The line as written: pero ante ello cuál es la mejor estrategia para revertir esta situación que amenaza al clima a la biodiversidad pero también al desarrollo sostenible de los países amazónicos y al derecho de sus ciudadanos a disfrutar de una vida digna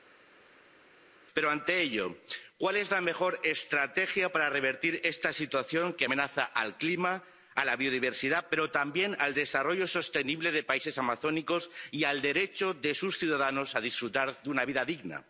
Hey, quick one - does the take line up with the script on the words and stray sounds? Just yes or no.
yes